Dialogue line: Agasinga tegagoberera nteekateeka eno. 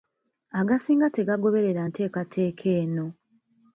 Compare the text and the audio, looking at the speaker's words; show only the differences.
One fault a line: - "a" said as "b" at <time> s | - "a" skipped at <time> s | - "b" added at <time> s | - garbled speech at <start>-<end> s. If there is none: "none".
none